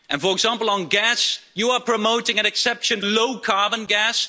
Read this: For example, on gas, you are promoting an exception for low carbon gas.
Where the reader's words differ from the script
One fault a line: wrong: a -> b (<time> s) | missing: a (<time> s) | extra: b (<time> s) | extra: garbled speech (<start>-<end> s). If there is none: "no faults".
missing: for (3.0 s)